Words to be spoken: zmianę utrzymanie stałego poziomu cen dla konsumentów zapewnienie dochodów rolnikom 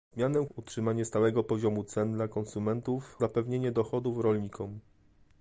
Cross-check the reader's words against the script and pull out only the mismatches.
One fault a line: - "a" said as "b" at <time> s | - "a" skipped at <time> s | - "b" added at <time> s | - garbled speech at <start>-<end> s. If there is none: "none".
none